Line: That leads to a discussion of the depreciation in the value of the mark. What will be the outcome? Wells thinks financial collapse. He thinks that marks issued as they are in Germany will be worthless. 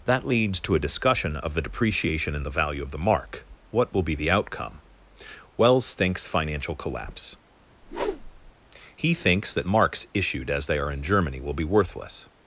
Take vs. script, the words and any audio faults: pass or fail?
fail